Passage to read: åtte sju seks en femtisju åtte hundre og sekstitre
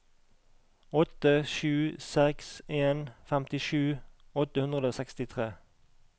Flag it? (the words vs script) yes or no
no